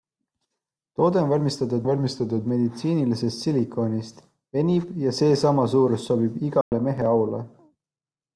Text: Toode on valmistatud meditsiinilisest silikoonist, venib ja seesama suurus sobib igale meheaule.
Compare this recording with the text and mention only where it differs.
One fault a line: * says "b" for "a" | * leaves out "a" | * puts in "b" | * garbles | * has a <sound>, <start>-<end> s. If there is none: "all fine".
* puts in "valmistatud"
* has a dropout, 6.6-6.7 s